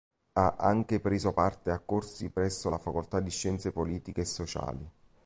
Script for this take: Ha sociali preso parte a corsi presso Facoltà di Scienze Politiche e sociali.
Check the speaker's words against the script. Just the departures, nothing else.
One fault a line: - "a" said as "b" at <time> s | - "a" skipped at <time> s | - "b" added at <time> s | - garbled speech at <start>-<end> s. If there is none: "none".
- "sociali" said as "anche" at 0.6 s
- "la" added at 2.7 s